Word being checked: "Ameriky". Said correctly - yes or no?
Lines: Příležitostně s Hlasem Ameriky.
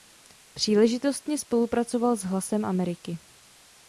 yes